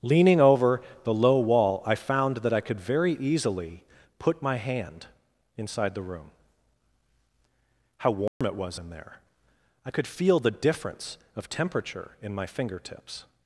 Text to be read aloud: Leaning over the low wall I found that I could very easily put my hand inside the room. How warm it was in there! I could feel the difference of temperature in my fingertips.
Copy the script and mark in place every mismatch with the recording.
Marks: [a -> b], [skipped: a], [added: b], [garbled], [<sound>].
Leaning over the low wall I found that I could very easily put my hand inside the room. How warm [dropout] it was in there! I could feel the difference of temperature in my fingertips.